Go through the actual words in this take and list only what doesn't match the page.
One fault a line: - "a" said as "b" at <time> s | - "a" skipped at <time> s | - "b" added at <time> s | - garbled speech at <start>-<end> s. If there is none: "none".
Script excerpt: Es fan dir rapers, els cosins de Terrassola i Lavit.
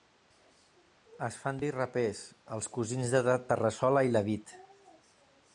none